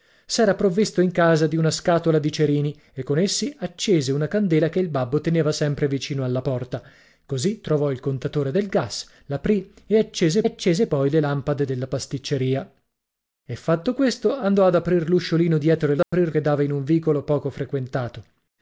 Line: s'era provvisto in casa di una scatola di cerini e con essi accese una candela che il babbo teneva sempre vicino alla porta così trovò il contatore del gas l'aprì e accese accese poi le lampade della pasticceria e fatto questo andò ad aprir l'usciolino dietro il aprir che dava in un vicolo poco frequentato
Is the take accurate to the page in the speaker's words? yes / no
yes